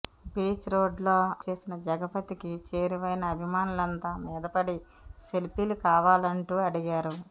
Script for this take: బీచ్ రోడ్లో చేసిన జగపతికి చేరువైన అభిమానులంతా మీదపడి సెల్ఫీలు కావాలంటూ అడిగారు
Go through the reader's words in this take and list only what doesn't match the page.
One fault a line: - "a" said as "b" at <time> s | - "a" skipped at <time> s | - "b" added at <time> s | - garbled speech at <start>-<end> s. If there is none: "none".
none